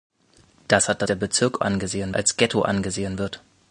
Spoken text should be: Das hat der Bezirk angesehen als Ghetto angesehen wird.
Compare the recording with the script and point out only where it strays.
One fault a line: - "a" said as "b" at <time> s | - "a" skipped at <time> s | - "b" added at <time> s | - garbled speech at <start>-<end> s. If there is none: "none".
none